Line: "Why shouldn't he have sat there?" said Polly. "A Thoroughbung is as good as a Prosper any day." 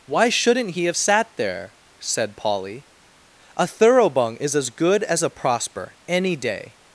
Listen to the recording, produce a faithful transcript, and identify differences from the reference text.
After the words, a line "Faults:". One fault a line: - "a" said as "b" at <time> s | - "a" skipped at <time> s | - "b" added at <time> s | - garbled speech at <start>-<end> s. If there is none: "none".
"Why shouldn't he have sat there?" said Polly. "A Thoroughbung is as good as a Prosper any day."
Faults:
none